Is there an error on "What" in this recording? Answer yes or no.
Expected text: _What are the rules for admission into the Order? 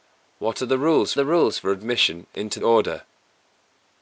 no